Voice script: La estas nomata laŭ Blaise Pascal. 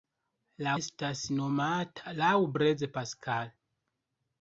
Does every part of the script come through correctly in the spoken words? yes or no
yes